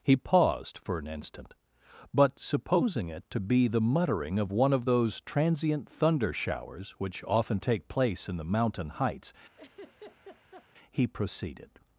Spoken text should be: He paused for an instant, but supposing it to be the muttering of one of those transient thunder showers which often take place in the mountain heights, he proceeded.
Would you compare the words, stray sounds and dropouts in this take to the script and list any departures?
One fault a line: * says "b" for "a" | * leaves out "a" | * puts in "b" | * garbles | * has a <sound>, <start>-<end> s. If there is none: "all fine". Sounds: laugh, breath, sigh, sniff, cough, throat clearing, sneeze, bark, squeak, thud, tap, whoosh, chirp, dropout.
* has a laugh, 9.6-10.7 s